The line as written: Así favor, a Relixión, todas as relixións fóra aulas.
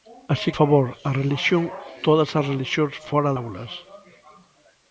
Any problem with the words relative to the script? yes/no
no